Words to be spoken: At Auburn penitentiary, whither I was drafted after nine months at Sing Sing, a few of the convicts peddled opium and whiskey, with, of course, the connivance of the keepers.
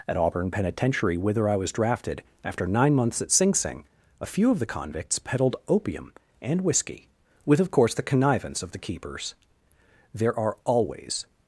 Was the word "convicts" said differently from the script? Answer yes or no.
no